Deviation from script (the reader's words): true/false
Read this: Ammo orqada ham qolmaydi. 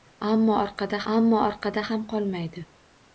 true